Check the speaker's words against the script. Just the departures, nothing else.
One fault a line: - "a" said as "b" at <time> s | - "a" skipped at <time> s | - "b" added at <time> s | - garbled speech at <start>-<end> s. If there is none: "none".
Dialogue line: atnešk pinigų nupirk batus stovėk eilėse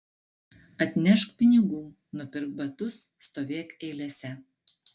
none